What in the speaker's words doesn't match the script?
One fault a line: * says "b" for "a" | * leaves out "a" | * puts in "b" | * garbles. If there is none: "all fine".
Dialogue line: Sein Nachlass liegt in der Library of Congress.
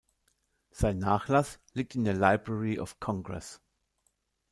all fine